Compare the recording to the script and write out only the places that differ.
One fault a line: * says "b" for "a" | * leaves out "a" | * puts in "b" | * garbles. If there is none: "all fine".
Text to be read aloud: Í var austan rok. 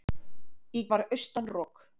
all fine